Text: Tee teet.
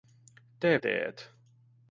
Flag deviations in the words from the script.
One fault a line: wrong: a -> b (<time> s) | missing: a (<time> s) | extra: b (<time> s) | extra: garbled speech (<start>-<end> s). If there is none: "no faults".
no faults